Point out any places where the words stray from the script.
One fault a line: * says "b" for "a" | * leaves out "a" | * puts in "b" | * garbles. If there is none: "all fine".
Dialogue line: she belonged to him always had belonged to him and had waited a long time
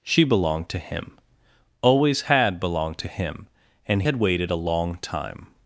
all fine